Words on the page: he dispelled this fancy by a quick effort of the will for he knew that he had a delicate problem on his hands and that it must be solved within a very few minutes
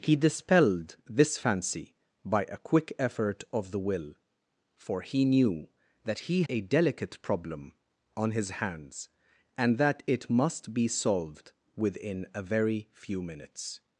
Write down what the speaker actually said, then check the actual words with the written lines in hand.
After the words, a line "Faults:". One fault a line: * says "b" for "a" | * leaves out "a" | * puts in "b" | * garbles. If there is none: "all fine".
he dispelled this fancy by a quick effort of the will for he knew that he a delicate problem on his hands and that it must be solved within a very few minutes
Faults:
* leaves out "had"